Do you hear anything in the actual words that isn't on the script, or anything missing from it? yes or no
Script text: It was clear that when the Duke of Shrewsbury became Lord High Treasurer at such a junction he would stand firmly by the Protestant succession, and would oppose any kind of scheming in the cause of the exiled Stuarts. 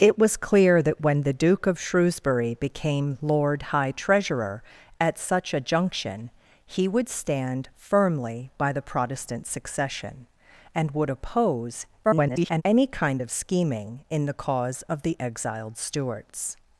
yes